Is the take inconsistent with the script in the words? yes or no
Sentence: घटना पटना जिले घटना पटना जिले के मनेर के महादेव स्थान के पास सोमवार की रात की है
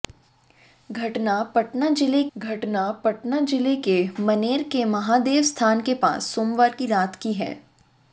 no